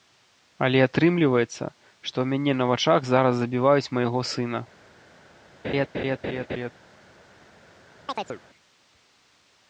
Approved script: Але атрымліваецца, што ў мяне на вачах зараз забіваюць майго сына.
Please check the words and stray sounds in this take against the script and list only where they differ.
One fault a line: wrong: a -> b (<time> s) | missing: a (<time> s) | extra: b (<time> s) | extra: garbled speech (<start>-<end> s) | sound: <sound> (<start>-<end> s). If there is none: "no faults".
sound: laugh (5.6-6.7 s)
sound: chirp (8.1-8.4 s)